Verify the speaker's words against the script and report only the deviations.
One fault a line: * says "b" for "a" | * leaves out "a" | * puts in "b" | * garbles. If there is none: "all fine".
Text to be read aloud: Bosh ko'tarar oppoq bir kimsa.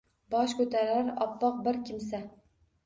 all fine